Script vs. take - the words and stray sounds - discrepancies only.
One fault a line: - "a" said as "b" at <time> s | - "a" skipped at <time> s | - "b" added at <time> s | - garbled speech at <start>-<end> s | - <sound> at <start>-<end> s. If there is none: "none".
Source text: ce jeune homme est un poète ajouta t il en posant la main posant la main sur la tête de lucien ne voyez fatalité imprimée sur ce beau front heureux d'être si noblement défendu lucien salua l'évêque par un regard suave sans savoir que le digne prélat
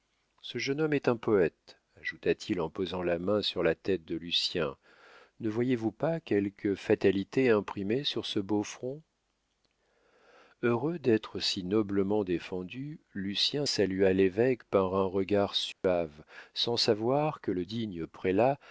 - "posant la main" skipped at 3.4 s
- "vous pas quelque" added at 5.8 s
- dropout at 15.7-15.8 s